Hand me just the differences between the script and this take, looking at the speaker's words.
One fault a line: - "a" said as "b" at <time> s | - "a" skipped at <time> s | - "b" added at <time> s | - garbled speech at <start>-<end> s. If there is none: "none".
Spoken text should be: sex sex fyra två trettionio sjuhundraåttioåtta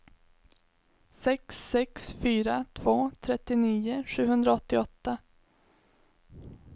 none